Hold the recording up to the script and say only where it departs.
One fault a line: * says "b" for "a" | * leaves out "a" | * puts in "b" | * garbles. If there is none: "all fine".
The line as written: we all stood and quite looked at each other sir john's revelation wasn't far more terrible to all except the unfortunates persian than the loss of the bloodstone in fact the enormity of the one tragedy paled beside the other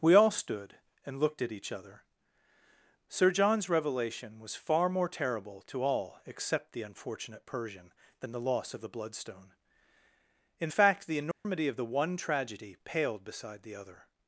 * leaves out "quite"
* says "was" for "wasn't"
* says "unfortunate" for "unfortunates"